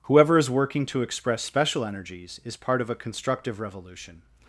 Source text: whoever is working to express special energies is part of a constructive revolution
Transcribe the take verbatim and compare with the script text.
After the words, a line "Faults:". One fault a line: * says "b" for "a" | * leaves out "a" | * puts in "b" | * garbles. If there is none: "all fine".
whoever is working to express special energies is part of a constructive revolution
Faults:
all fine